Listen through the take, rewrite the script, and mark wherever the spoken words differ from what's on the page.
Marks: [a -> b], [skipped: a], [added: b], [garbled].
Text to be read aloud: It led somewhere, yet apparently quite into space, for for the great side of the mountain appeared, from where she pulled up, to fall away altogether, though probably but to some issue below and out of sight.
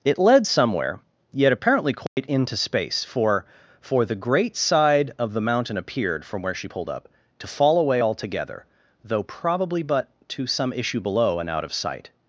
It led somewhere, yet apparently quite into space, for for the great side of the mountain appeared, from where she pulled up, to fall away altogether, though probably but to some issue below and out of sight.